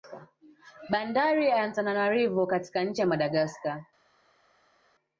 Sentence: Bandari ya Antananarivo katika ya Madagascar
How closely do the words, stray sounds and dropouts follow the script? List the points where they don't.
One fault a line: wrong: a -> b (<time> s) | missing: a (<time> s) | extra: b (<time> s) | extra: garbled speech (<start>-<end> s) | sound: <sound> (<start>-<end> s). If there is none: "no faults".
extra: nchi (2.8 s)